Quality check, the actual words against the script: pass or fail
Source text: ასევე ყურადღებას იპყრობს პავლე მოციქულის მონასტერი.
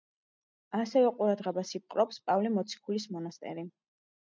pass